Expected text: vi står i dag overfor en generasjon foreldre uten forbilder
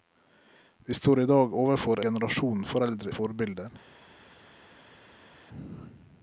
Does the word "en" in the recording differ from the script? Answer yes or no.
yes